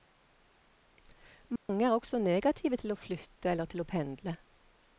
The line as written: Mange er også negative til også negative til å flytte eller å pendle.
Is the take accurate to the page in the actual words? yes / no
no